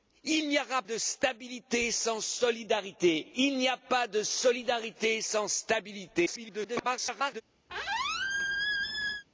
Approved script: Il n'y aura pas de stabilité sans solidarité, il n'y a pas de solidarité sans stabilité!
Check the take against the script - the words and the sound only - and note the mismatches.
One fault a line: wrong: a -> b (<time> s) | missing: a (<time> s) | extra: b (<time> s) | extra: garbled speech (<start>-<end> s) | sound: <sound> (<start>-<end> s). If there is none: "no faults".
missing: pas (0.8 s)
extra: garbled speech (6.3-7.4 s)
sound: squeak (7.7-9.2 s)